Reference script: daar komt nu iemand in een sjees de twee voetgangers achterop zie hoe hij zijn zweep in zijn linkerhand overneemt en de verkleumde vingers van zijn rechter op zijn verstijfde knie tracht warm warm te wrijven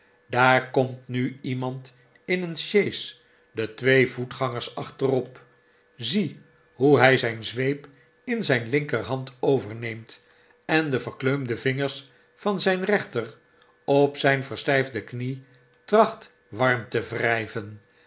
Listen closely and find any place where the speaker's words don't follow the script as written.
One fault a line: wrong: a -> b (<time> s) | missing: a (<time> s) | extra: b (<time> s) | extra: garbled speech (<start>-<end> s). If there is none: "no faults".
missing: warm (16.9 s)